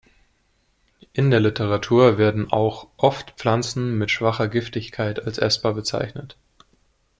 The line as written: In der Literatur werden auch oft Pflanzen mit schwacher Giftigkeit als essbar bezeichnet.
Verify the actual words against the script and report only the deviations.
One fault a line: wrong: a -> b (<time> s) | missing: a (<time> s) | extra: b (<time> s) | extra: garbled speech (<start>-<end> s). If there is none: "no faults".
no faults